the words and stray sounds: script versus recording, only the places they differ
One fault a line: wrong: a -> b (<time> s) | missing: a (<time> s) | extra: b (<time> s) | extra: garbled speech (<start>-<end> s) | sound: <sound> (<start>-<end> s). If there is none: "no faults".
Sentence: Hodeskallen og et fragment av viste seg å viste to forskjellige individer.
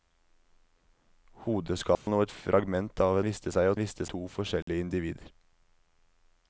sound: dropout (2.0-2.1 s)
sound: dropout (4.6-4.7 s)